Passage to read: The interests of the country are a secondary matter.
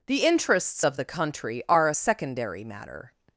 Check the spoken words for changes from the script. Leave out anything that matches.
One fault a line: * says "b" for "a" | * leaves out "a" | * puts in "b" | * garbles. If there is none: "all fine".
all fine